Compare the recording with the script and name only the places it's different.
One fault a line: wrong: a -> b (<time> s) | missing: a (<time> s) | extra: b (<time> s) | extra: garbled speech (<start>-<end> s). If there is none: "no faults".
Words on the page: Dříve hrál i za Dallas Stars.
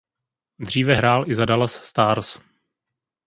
no faults